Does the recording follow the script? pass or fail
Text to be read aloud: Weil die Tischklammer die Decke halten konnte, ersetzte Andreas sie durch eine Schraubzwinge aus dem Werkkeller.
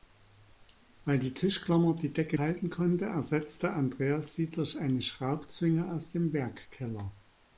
pass